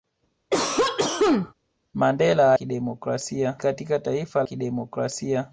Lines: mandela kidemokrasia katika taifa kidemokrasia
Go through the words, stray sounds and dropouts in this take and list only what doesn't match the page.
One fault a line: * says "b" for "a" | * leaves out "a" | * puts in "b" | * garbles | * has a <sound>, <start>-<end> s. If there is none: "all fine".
* has a cough, 0.5-1.5 s